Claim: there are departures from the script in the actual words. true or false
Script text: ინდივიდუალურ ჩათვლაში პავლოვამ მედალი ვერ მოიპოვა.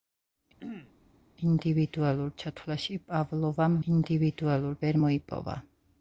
true